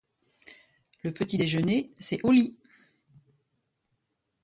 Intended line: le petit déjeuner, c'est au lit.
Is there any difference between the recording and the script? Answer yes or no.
no